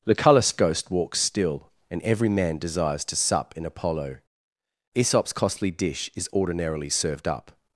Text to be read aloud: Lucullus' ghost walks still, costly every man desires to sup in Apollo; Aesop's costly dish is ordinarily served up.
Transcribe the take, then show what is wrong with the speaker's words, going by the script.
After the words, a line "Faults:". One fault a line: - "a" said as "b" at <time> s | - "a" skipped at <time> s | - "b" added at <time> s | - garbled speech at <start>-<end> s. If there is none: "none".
Lucullus' ghost walks still, and every man desires to sup in Apollo; Aesop's costly dish is ordinarily served up.
Faults:
- "costly" said as "and" at 1.9 s